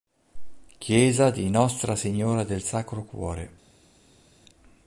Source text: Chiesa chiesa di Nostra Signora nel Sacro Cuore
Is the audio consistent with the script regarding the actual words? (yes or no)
no